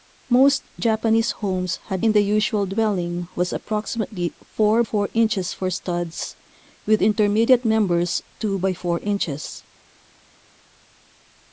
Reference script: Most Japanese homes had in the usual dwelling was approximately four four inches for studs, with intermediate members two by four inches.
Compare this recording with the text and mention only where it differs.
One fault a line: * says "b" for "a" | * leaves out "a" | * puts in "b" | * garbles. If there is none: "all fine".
all fine